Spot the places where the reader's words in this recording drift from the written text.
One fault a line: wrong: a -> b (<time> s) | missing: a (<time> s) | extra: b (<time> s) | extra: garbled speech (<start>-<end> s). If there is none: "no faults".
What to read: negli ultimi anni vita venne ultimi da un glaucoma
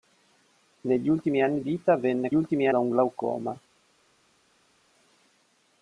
no faults